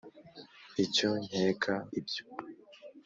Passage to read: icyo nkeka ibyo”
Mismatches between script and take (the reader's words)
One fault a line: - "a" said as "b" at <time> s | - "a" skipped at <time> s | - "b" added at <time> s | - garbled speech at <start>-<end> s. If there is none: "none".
none